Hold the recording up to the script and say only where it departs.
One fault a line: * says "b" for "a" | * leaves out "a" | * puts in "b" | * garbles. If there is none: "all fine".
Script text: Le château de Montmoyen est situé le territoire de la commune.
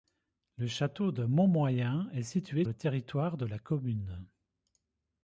all fine